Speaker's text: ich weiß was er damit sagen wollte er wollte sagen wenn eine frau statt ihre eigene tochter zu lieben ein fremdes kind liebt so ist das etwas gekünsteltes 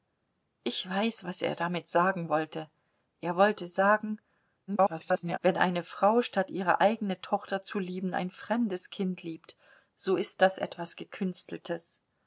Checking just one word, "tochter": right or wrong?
right